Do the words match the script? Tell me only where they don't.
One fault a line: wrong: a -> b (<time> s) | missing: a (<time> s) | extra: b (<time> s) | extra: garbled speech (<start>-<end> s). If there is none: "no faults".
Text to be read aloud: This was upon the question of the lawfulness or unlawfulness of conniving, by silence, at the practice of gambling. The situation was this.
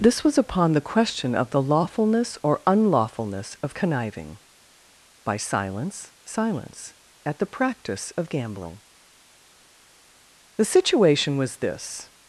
extra: silence (6.2 s)